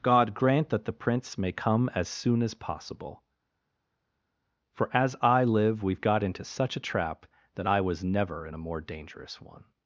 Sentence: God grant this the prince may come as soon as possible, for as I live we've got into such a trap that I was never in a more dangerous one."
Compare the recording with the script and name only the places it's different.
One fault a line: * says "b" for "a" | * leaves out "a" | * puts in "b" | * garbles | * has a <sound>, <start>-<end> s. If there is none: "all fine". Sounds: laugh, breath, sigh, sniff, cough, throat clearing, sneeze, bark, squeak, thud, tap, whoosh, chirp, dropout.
* says "that" for "this"